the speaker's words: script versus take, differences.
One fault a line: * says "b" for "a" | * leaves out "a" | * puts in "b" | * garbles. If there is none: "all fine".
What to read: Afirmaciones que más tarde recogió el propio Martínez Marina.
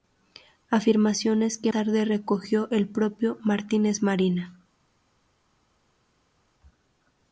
* leaves out "más"